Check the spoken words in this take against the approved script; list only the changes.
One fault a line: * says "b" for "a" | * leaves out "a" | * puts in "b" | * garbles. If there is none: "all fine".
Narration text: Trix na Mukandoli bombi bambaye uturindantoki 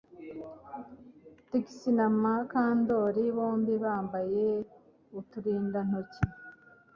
all fine